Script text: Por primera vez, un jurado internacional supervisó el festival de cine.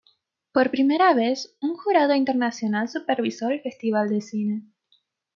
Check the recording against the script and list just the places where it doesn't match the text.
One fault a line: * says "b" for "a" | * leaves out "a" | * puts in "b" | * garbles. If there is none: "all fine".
all fine